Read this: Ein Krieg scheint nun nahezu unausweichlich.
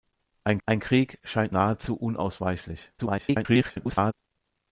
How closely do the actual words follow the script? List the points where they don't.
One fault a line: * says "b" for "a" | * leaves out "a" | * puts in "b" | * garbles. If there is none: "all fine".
* puts in "ein"
* leaves out "nun"
* garbles